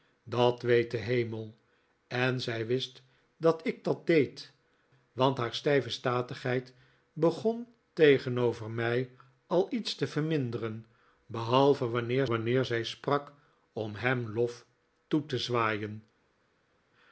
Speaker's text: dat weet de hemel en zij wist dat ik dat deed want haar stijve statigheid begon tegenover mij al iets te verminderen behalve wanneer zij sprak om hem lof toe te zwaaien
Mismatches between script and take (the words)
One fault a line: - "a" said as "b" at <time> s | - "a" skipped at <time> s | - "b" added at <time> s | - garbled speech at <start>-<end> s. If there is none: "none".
- "wanneer" added at 12.2 s